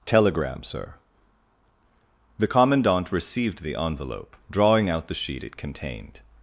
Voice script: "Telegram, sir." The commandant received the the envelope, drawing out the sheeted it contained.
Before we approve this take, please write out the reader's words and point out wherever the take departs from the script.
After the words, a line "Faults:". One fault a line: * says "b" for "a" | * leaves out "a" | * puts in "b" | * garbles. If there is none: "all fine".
"Telegram, sir." The commandant received the envelope, drawing out the sheet it contained.
Faults:
* leaves out "the"
* says "sheet" for "sheeted"